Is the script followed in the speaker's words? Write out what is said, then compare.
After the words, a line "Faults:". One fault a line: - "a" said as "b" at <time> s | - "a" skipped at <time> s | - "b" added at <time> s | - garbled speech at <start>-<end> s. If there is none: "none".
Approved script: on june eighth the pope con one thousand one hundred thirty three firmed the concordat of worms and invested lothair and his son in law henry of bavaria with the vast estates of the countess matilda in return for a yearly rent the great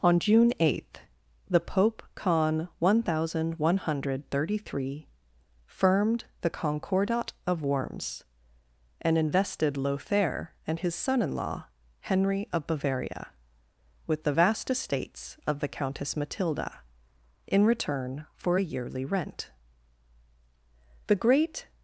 on june eighth the pope con one thousand one hundred thirty three firmed the concordat of worms and invested lothair and his son in law henry of bavaria with the vast estates of the countess matilda in return for a yearly rent the great
Faults:
none